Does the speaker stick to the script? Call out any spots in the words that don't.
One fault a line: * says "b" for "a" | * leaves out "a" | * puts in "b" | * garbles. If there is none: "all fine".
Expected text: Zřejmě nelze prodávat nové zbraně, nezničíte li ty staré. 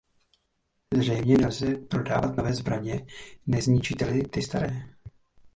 all fine